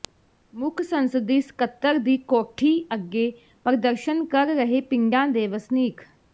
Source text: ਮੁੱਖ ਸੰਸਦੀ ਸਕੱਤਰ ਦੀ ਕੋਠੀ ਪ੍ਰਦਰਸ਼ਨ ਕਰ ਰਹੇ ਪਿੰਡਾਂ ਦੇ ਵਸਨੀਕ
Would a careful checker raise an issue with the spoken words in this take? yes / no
yes